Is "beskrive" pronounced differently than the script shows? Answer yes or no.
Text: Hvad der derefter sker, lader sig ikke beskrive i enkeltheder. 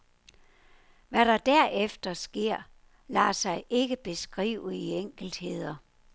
no